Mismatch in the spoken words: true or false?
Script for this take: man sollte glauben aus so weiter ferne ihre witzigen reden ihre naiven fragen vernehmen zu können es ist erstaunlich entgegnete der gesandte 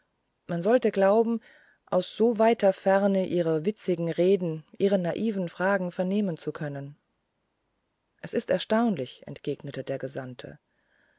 false